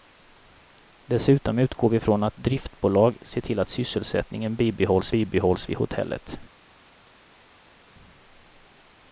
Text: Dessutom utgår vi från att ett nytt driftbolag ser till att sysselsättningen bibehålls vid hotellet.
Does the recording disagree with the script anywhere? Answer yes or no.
yes